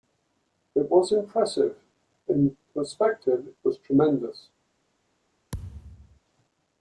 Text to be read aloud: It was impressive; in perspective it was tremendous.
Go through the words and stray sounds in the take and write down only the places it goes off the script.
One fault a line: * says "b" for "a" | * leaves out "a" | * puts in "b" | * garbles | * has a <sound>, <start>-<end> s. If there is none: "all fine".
* has a thud, 5.5-6.2 s